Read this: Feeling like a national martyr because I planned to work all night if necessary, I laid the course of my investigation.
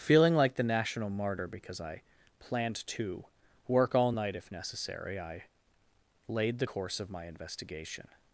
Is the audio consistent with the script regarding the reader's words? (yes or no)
no